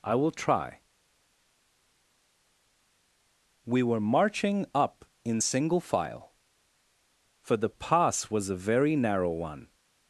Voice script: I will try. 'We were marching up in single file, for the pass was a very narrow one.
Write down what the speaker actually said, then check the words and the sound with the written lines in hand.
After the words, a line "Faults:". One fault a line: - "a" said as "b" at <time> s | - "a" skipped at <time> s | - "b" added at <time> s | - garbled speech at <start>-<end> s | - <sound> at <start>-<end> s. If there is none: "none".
I will try. 'We were marching up in single file, for the pass was a very narrow one.
Faults:
none